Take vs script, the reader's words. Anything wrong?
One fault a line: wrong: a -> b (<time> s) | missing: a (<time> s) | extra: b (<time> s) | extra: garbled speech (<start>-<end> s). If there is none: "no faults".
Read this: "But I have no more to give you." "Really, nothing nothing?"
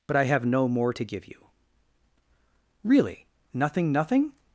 no faults